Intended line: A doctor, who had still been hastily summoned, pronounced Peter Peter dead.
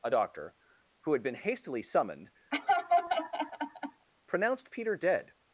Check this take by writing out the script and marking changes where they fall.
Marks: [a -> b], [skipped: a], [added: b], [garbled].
A doctor, who had [skipped: still] been hastily summoned, pronounced Peter [skipped: Peter] dead.